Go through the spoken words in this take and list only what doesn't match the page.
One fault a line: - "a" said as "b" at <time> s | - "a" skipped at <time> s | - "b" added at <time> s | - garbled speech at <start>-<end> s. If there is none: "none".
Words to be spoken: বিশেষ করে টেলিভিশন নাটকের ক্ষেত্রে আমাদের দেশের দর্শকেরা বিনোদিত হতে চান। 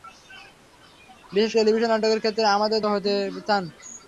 - "করে" skipped at 1.5 s
- "দেশের দর্শকেরা বিনোদিত" skipped at 2.8 s